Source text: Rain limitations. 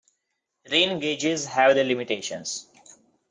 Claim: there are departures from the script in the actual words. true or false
true